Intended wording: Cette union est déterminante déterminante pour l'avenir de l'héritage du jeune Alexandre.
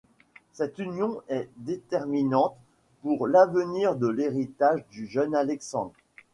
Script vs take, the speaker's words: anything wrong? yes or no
yes